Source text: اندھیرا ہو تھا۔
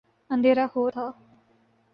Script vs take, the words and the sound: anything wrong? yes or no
no